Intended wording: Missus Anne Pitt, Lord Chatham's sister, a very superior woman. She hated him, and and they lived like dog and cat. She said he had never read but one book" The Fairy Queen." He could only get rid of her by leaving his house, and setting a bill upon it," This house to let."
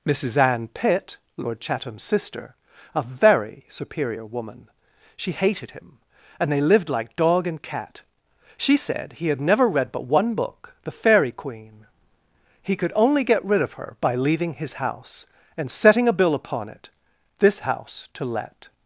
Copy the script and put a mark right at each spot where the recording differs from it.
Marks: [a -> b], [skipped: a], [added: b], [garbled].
Missus Anne Pitt, Lord Chatham's sister, a very superior woman. She hated him, and [skipped: and] they lived like dog and cat. She said he had never read but one book" The Fairy Queen." He could only get rid of her by leaving his house, and setting a bill upon it," This house to let."